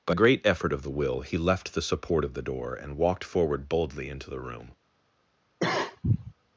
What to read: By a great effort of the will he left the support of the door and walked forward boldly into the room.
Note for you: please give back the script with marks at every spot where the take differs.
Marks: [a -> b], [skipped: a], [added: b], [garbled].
By [skipped: a] great effort of the will he left the support of the door and walked forward boldly into the room.